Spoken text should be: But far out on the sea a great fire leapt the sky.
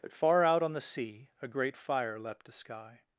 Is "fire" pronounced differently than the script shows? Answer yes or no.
no